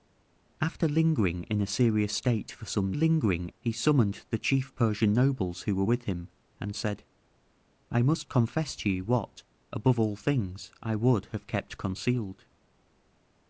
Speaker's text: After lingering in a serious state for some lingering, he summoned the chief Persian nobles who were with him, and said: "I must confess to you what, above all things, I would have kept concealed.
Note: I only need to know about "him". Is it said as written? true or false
true